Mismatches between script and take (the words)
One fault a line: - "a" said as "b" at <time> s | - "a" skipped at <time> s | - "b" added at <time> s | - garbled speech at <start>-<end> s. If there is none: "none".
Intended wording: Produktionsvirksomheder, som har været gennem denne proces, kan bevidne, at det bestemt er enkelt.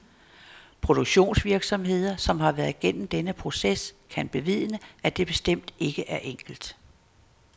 - "ikke" added at 5.8 s